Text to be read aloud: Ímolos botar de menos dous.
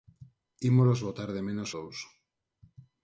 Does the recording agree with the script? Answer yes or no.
yes